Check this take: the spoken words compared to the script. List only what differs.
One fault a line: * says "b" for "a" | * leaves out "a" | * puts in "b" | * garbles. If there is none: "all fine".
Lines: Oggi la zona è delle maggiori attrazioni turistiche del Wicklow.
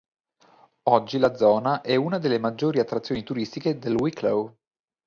* puts in "una"